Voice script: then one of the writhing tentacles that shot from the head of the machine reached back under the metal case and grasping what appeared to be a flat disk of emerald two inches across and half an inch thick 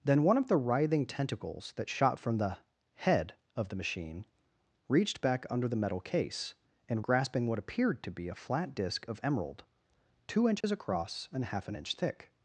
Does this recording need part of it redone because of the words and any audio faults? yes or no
yes